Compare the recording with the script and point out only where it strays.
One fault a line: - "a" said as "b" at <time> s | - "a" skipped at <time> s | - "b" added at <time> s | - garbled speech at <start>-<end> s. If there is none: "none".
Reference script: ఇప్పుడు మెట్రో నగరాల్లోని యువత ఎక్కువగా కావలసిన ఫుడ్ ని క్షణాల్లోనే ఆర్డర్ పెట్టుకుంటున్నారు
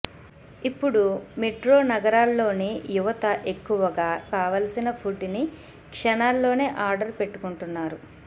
none